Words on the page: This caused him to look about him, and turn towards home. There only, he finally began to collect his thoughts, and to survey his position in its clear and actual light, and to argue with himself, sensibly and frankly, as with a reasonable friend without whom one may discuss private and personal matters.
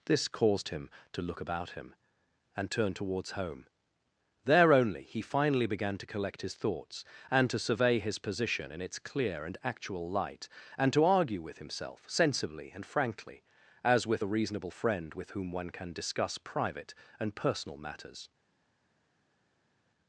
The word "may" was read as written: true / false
false